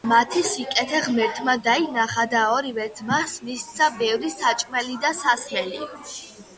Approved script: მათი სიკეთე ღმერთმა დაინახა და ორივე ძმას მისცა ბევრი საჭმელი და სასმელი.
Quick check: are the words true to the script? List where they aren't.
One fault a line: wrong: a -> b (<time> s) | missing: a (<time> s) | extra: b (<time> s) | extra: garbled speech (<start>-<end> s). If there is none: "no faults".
no faults